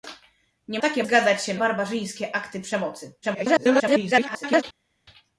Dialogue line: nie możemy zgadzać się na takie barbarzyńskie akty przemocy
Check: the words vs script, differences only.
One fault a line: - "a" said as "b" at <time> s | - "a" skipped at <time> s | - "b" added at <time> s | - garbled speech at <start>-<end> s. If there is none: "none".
- "możemy" said as "takie" at 0.8 s
- "na takie" skipped at 1.5 s
- garbled speech at 3.2-4.6 s